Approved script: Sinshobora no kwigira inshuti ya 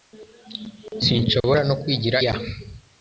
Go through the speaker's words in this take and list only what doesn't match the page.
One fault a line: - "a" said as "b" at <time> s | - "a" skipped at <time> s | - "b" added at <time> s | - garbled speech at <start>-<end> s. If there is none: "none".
- "inshuti" skipped at 2.2 s